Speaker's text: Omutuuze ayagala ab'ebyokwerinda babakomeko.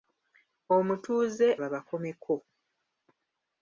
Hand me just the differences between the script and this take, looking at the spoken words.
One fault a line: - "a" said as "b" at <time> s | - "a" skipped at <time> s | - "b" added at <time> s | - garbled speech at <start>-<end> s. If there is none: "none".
- "ayagala ab'ebyokwerinda" skipped at 1.5 s